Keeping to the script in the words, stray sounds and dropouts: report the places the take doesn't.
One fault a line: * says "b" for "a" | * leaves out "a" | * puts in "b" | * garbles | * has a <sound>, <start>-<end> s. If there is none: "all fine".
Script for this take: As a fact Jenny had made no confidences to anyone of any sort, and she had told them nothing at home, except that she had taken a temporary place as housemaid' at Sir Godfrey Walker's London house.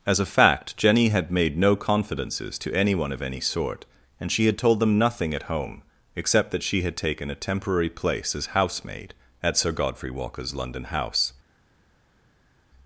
all fine